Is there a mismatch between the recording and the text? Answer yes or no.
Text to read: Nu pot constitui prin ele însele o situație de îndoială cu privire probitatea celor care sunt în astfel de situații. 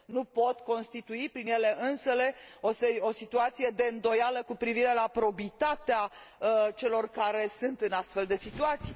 yes